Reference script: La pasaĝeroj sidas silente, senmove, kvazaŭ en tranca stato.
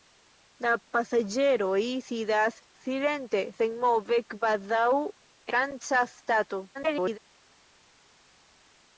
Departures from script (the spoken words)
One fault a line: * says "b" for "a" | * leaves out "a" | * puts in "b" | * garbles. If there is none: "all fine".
* leaves out "en"
* garbles